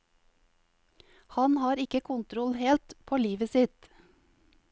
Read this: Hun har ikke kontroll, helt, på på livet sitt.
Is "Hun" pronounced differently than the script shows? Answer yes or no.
yes